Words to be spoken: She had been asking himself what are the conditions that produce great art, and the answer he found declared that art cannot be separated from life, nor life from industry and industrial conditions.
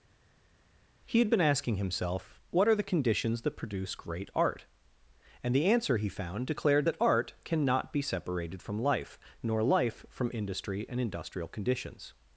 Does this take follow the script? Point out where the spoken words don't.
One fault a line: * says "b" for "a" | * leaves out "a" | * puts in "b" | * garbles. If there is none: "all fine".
* says "He" for "She"